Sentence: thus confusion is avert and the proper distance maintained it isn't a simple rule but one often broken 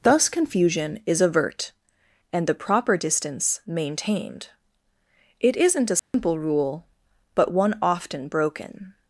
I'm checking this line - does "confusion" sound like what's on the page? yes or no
yes